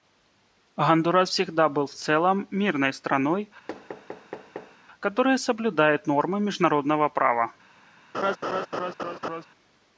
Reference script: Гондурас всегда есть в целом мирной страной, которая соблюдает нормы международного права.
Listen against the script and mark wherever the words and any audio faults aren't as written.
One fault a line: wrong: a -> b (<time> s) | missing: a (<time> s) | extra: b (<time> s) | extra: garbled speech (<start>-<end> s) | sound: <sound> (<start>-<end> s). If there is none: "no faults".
wrong: есть -> был (1.7 s)
sound: thud (3.7-4.8 s)
sound: laugh (8.1-9.5 s)